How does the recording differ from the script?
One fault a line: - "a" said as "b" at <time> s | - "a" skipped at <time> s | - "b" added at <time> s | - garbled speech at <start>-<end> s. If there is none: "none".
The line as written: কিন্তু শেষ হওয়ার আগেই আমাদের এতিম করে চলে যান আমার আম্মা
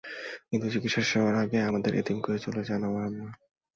- "চিকিৎসা" added at 0.7 s